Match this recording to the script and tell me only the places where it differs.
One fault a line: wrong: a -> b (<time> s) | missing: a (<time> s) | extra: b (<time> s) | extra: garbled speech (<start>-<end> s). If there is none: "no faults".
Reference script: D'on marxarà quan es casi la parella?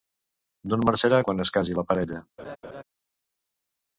no faults